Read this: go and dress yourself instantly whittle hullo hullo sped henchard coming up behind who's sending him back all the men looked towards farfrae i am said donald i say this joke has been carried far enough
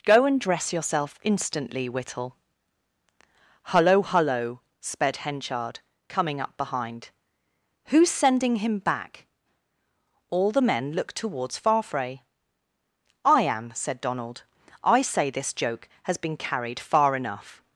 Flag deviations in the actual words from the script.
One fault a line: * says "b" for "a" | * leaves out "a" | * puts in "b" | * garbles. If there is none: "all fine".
all fine